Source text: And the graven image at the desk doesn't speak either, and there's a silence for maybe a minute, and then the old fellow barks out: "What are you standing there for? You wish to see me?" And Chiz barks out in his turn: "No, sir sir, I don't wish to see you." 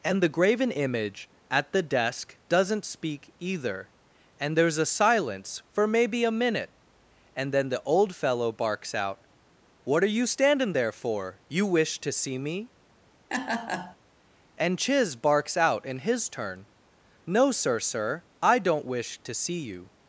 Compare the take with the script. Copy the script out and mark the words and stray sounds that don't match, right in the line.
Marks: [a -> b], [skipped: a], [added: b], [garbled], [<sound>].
And the graven image at the desk doesn't speak either, and there's a silence for maybe a minute, and then the old fellow barks out: "What are you standing there for? You wish to see me?" [laugh] And Chiz barks out in his turn: "No, sir sir, I don't wish to see you."